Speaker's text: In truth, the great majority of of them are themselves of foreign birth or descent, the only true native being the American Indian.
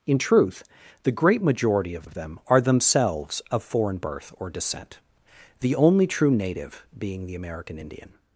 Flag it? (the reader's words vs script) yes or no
no